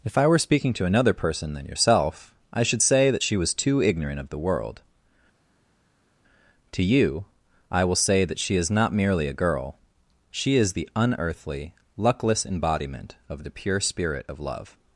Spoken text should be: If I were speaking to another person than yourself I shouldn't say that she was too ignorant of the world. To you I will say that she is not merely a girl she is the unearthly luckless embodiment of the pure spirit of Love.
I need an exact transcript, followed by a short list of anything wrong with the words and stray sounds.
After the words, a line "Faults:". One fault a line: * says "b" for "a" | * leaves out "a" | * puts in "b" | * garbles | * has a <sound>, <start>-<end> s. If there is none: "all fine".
If I were speaking to another person than yourself I should say that she was too ignorant of the world. To you I will say that she is not merely a girl she is the unearthly luckless embodiment of the pure spirit of Love.
Faults:
* says "should" for "shouldn't"